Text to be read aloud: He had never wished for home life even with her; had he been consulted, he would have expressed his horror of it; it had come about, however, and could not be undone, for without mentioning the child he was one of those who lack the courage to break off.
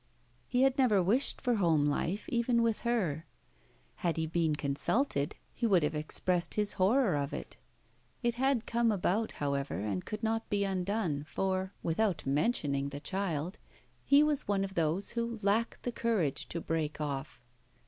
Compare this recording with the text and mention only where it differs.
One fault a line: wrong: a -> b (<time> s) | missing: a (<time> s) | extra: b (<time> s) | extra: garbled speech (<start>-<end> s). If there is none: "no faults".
no faults